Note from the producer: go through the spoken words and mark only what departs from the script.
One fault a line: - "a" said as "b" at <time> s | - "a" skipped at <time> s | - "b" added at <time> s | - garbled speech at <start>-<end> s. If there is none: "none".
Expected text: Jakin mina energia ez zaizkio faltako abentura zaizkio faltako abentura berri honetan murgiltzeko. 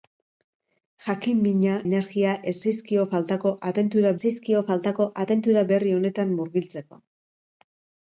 none